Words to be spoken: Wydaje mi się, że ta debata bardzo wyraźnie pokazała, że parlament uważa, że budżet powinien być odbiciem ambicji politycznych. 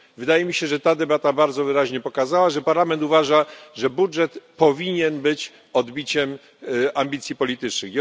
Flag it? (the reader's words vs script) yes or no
no